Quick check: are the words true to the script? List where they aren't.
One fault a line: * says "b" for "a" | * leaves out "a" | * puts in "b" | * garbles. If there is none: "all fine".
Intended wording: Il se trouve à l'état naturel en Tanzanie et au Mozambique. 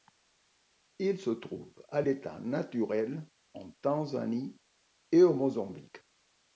all fine